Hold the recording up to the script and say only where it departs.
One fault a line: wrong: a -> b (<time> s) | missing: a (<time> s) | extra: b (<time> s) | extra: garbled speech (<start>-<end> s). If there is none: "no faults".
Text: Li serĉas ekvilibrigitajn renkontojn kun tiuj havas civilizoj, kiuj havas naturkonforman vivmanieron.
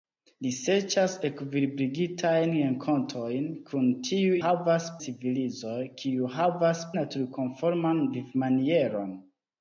no faults